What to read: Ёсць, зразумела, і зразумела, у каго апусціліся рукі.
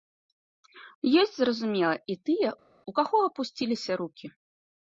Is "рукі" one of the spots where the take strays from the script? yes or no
no